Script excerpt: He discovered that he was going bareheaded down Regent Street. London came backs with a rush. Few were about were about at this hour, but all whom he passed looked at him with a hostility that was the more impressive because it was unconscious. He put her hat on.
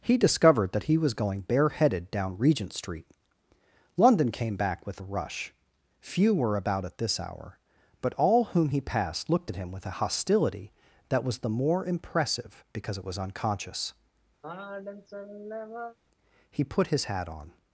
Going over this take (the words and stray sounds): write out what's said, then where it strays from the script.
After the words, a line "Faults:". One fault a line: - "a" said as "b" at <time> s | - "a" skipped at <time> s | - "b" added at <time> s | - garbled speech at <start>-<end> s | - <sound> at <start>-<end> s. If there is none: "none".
He discovered that he was going bareheaded down Regent Street. London came back with a rush. Few were about at this hour, but all whom he passed looked at him with a hostility that was the more impressive because it was unconscious. He put his hat on.
Faults:
- "backs" said as "back" at 4.5 s
- "were about" skipped at 6.8 s
- sigh at 14.4-16.0 s
- "her" said as "his" at 16.9 s